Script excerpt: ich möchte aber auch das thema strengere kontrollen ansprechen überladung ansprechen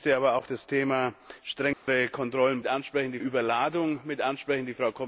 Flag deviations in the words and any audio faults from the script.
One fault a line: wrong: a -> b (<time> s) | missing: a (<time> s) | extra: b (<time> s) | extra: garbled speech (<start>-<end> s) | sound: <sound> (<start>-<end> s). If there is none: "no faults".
sound: dropout (1.7-1.9 s)